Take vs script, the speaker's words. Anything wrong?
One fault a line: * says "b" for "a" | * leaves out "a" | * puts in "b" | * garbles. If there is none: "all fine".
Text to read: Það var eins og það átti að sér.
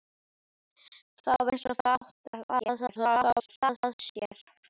* leaves out "var"
* garbles